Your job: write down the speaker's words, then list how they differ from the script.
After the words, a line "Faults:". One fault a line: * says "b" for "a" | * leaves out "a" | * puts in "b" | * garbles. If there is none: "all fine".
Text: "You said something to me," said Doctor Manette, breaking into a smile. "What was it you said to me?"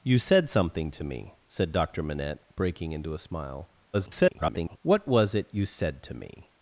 "You said something to me," said Doctor Manette, breaking into a smile. [garbled] "What was it you said to me?"
Faults:
* garbles